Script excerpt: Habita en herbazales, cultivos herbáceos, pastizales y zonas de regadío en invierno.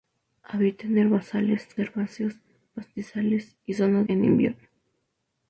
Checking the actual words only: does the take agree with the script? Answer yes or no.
no